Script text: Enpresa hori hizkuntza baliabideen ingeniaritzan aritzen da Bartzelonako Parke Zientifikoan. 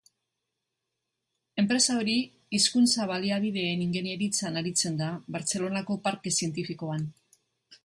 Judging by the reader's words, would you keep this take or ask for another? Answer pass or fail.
pass